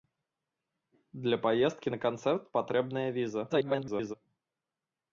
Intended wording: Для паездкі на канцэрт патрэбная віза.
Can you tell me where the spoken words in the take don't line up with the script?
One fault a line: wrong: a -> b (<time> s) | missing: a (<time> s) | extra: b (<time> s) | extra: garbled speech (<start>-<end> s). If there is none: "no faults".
extra: garbled speech (3.5-4.1 s)